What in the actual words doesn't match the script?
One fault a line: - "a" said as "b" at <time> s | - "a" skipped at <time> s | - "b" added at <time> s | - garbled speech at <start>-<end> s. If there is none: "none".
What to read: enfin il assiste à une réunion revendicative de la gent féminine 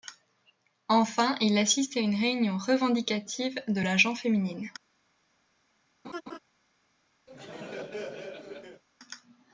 none